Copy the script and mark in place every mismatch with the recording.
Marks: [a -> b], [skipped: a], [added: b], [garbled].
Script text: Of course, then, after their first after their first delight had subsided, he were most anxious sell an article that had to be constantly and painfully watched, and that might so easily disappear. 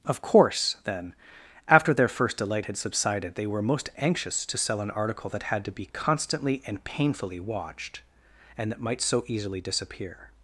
Of course, then, after their first [skipped: after their first] delight had subsided, [he -> they] were most anxious [added: to] sell an article that had to be constantly and painfully watched, and that might so easily disappear.